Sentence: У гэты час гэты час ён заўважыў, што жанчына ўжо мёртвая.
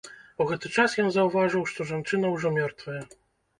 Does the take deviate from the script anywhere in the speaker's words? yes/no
yes